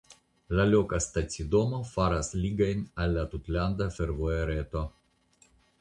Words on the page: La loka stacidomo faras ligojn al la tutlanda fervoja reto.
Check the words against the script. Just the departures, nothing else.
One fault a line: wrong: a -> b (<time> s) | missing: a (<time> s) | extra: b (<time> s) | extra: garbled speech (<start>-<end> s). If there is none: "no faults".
no faults